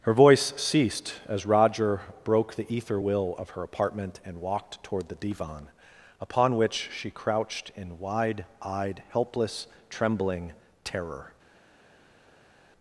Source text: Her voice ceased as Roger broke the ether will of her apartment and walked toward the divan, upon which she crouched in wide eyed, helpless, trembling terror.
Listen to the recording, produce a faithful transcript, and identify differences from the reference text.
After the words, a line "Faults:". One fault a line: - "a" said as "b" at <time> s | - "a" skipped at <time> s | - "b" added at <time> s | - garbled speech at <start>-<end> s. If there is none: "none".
Her voice ceased as Roger broke the ether will of her apartment and walked toward the divan, upon which she crouched in wide eyed, helpless, trembling terror.
Faults:
none